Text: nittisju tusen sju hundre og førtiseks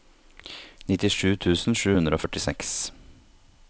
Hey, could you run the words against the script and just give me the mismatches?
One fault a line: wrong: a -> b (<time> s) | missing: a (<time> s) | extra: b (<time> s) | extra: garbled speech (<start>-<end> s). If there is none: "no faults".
no faults